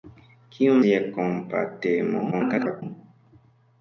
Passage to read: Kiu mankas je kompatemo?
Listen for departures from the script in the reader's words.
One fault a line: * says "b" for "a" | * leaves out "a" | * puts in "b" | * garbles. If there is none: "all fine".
* leaves out "mankas"
* garbles